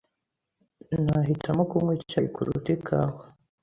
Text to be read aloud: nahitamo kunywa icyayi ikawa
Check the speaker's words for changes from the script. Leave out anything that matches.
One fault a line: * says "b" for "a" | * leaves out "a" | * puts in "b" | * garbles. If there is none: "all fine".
* puts in "kuruta"